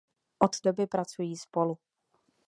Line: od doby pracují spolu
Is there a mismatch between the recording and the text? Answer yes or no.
no